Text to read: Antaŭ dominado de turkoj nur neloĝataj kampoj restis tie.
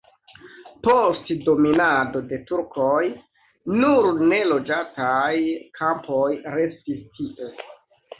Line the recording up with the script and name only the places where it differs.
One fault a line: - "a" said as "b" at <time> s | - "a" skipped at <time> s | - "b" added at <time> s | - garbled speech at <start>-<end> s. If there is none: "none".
- "Antaŭ" said as "Post" at 0.8 s